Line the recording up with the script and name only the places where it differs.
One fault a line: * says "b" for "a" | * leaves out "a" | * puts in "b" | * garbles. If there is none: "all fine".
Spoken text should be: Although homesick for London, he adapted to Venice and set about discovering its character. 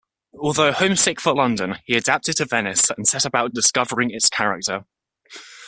all fine